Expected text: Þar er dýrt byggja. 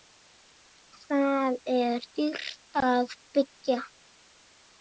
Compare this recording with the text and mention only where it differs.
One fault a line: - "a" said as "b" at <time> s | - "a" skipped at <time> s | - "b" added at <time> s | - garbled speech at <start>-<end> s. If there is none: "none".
- "að" added at 2.8 s